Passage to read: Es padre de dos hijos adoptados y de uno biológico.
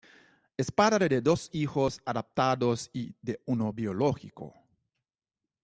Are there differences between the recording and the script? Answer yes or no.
no